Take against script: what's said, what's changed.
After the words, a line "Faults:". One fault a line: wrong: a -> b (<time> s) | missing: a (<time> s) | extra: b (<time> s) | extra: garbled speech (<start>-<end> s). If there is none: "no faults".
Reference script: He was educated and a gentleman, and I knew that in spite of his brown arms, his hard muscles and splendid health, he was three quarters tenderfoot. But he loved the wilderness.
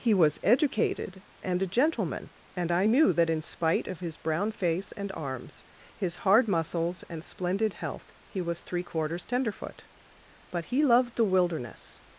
He was educated and a gentleman, and I knew that in spite of his brown face and arms, his hard muscles and splendid health, he was three quarters tenderfoot. But he loved the wilderness.
Faults:
extra: face and (4.5 s)